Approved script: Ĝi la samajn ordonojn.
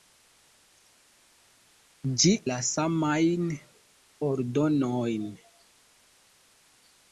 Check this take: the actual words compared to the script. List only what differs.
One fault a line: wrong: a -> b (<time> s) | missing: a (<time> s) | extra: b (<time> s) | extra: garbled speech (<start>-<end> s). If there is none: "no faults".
no faults